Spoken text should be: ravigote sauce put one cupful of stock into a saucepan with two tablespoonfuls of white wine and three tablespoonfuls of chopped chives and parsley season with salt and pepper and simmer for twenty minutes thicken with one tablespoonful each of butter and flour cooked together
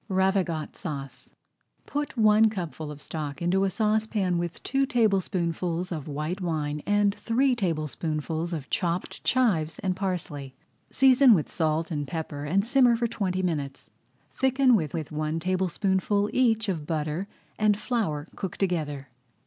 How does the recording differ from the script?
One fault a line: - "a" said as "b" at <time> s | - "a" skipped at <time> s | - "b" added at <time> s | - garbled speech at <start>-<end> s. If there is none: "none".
- "with" added at 14.9 s